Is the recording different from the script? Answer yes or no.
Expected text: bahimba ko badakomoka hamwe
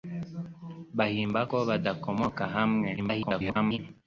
yes